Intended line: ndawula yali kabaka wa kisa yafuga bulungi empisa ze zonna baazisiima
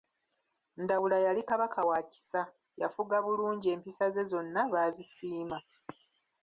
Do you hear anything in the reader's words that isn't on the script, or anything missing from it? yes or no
no